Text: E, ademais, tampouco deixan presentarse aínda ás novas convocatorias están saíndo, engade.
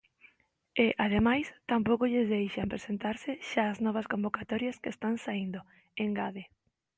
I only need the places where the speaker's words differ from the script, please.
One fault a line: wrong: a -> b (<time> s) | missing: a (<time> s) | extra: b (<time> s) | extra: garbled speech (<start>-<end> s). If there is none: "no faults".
extra: lles (2.1 s)
wrong: aínda -> xa (3.5 s)
extra: que (4.8 s)